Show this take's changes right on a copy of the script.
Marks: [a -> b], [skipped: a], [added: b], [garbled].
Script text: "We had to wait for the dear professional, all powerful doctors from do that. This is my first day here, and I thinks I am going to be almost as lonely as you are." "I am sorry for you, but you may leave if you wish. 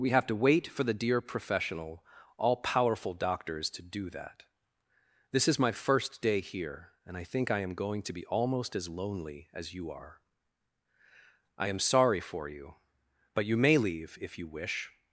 "We [had -> have] to wait for the dear professional, all powerful doctors [from -> to] do that. This is my first day here, and I [thinks -> think] I am going to be almost as lonely as you are." "I am sorry for you, but you may leave if you wish.